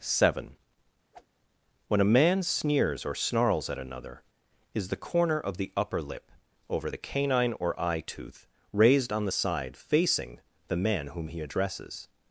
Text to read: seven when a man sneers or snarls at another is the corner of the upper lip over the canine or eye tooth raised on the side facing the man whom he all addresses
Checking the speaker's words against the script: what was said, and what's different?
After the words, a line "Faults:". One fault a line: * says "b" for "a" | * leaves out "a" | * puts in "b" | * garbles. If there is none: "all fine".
seven when a man sneers or snarls at another is the corner of the upper lip over the canine or eye tooth raised on the side facing the man whom he addresses
Faults:
* leaves out "all"